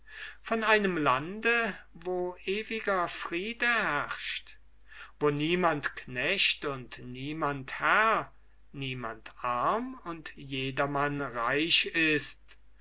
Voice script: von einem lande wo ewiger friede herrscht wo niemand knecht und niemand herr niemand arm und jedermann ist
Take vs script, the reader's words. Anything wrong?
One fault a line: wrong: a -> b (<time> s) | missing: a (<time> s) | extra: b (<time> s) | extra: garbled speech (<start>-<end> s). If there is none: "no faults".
extra: reich (11.2 s)